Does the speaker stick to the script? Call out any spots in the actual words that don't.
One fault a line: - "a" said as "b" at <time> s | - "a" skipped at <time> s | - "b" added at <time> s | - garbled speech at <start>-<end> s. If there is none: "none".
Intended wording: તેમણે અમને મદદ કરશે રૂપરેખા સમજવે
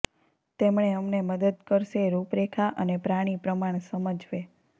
- "અને પ્રાણી પ્રમાણ" added at 2.8 s